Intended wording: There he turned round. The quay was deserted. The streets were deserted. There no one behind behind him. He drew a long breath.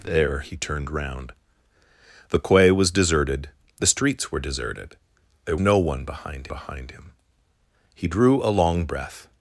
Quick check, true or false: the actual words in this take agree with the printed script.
true